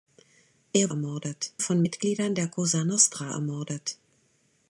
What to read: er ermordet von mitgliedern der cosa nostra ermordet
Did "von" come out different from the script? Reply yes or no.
no